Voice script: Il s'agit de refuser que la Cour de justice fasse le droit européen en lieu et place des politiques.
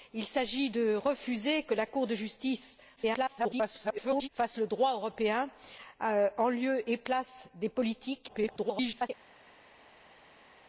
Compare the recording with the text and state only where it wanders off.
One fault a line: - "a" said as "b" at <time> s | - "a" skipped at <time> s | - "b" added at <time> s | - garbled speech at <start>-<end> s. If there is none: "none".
- garbled speech at 3.0-4.3 s
- garbled speech at 8.3-9.1 s